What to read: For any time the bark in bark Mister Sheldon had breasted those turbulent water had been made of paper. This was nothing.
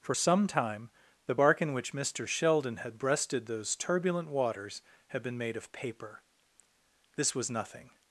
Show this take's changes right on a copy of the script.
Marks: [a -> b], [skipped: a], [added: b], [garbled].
For [any -> some] time the bark in [bark -> which] Mister Sheldon had breasted those turbulent [water -> waters] had been made of paper. This was nothing.